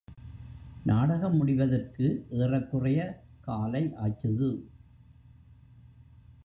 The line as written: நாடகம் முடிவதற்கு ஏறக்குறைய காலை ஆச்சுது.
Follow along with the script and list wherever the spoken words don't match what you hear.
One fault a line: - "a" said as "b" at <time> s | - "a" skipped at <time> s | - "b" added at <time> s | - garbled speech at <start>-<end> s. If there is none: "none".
none